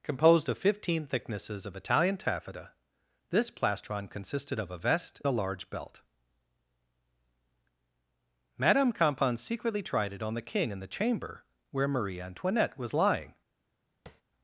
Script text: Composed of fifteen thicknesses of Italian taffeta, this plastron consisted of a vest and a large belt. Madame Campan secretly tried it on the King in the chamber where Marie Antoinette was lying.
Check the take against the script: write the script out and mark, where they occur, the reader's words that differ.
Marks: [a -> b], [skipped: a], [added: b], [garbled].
Composed of fifteen thicknesses of Italian taffeta, this plastron consisted of a vest [skipped: and] a large belt. Madame Campan secretly tried it on the King in the chamber where Marie Antoinette was lying.